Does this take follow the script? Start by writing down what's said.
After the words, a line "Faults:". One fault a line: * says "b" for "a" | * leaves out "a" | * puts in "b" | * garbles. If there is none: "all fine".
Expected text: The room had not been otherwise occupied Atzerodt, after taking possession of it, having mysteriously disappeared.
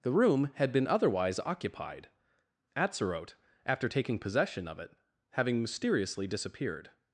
The room had been otherwise occupied Atzerodt, after taking possession of it, having mysteriously disappeared.
Faults:
* leaves out "not"